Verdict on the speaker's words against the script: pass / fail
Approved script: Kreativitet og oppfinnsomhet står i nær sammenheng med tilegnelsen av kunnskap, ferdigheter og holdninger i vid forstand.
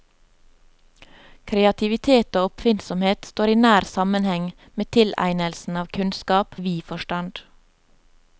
fail